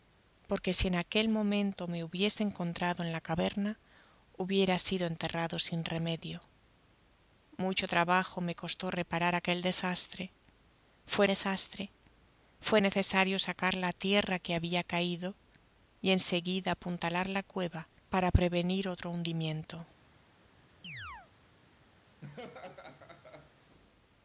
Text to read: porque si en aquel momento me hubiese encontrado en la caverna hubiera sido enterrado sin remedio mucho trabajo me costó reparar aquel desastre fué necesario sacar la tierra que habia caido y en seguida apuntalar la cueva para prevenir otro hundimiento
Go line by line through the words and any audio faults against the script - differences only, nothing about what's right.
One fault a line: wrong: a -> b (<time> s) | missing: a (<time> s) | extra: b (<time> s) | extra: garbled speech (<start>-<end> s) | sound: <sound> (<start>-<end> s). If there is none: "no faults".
extra: desastre fué (11.2 s)
sound: chirp (20.8-21.3 s)
sound: laugh (22.2-23.5 s)